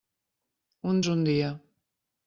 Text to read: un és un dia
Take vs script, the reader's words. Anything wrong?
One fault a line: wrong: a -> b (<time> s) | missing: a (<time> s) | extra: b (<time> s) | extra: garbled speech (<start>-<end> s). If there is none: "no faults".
no faults